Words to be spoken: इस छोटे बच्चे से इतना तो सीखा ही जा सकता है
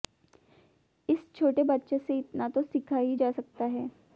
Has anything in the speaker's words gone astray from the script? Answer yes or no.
no